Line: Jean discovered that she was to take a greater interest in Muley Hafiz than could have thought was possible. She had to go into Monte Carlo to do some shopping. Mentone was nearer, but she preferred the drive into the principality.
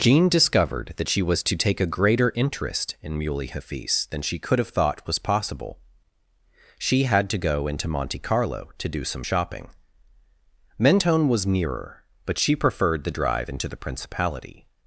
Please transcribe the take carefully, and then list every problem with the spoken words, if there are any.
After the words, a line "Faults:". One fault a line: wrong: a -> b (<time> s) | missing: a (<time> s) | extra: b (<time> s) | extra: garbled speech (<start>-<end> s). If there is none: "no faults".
Jean discovered that she was to take a greater interest in Muley Hafiz than she could have thought was possible. She had to go into Monte Carlo to do some shopping. Mentone was nearer, but she preferred the drive into the principality.
Faults:
extra: she (4.2 s)